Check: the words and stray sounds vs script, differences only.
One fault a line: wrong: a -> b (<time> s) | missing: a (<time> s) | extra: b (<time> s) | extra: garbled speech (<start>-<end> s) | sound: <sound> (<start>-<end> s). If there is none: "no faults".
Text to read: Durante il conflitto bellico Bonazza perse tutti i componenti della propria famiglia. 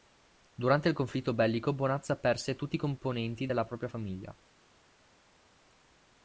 no faults